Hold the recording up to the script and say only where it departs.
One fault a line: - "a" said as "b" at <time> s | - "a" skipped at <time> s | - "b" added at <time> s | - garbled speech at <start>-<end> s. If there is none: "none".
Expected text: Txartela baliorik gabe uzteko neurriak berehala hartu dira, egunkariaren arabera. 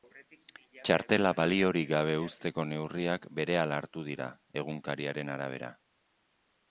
none